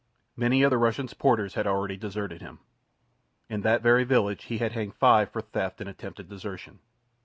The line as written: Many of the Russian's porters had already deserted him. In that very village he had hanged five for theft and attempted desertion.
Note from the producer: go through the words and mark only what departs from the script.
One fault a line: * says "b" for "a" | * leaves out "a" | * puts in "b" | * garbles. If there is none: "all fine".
all fine